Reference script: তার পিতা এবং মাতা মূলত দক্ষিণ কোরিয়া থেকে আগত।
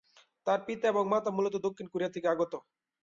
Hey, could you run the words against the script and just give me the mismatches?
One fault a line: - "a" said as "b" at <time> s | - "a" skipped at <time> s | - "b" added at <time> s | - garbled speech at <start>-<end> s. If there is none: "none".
none